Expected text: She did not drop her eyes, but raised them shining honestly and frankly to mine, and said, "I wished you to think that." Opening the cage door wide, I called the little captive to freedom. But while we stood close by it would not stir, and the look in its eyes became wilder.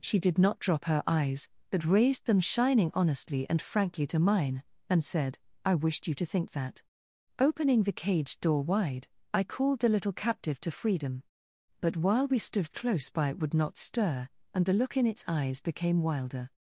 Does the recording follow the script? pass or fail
pass